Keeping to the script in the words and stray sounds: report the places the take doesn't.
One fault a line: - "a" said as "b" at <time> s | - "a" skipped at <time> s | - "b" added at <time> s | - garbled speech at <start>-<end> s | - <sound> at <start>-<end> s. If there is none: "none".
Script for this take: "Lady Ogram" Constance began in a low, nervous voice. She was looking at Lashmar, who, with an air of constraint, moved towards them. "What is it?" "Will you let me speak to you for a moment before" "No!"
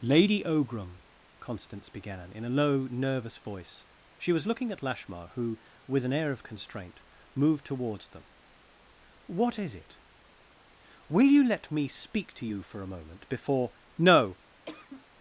- cough at 14.7-15.1 s